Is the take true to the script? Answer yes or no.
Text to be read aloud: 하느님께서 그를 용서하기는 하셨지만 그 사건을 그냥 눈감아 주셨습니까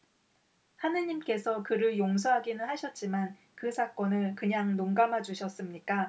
yes